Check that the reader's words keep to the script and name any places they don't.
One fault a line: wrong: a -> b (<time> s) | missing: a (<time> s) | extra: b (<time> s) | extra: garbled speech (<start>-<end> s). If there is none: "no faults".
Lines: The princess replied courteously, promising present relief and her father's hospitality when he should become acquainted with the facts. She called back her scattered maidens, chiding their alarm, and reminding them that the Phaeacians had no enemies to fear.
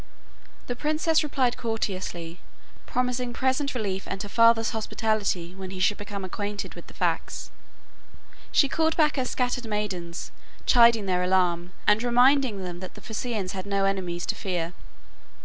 no faults